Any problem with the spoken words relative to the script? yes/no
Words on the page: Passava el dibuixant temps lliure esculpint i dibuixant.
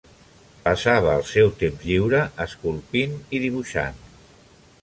yes